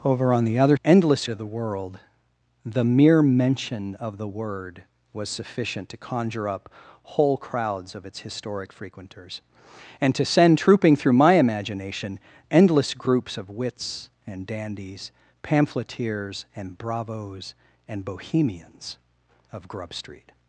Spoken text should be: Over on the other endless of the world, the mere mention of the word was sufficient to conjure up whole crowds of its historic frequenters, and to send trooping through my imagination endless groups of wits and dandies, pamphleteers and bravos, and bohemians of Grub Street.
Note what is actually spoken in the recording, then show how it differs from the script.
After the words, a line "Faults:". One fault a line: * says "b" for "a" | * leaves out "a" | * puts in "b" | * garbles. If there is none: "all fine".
Over on the other endless of the world, the mere mention of the word was sufficient to conjure up whole crowds of its historic frequenters, and to send trooping through my imagination endless groups of wits and dandies, pamphleteers and bravos, and bohemians of Grub Street.
Faults:
all fine